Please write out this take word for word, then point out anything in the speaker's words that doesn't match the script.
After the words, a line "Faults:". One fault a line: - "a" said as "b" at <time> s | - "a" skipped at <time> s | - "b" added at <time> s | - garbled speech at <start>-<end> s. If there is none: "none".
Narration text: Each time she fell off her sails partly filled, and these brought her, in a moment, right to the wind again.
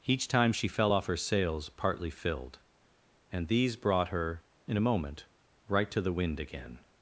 Each time she fell off her sails partly filled, and these brought her, in a moment, right to the wind again.
Faults:
none